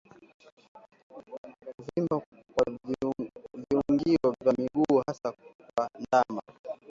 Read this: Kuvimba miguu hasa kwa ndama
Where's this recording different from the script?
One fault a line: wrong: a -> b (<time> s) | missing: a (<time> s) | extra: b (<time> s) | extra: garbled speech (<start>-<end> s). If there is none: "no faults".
extra: kwa viungio vya (2.5 s)